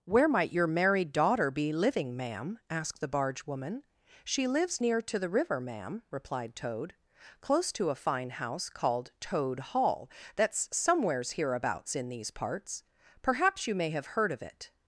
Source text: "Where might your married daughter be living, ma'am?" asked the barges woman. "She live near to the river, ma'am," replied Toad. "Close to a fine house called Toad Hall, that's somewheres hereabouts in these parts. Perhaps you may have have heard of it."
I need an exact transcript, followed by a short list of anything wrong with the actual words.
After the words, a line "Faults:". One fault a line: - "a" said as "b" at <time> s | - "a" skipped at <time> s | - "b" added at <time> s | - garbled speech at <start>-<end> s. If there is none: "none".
"Where might your married daughter be living, ma'am?" asked the barge woman. "She lives near to the river, ma'am," replied Toad. "Close to a fine house called Toad Hall, that's somewheres hereabouts in these parts. Perhaps you may have heard of it."
Faults:
- "barges" said as "barge" at 3.1 s
- "live" said as "lives" at 4.5 s
- "have" skipped at 14.1 s